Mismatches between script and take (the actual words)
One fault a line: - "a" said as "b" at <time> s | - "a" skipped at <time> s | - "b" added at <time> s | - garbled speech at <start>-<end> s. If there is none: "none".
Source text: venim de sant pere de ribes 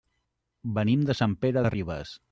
none